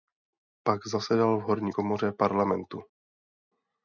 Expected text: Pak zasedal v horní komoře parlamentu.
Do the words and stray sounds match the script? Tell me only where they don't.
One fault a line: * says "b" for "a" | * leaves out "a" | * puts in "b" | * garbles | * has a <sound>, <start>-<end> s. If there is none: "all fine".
all fine